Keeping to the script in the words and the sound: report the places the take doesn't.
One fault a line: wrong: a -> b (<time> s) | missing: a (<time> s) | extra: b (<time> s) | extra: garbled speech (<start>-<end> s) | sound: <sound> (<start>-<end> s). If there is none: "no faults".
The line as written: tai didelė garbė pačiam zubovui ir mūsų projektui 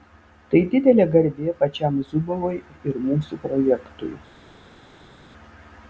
no faults